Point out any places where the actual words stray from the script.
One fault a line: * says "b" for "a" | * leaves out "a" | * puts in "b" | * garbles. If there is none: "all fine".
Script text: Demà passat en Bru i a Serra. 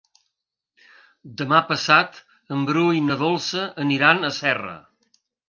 * puts in "na Dolça aniran"